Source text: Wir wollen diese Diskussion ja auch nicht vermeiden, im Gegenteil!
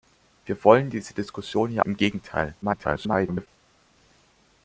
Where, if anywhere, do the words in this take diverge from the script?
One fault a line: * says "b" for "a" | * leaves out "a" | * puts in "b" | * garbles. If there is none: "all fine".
* leaves out "auch nicht vermeiden"
* garbles